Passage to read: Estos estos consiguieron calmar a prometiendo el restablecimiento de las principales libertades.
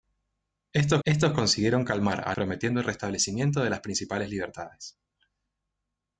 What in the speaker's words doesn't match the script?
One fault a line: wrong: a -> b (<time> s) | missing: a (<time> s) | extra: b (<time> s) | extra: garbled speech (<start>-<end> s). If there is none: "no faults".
no faults